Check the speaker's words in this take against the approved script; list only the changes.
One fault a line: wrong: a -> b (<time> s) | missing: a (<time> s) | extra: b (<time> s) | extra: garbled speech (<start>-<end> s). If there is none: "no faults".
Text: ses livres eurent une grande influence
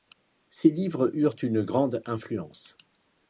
no faults